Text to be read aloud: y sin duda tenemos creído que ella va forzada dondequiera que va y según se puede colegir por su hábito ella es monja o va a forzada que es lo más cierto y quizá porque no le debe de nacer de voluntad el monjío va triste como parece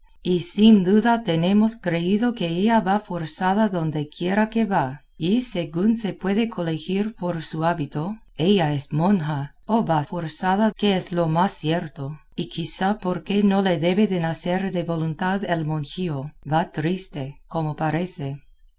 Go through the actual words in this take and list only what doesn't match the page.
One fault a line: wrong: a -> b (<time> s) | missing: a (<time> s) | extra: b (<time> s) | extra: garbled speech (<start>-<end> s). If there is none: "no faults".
no faults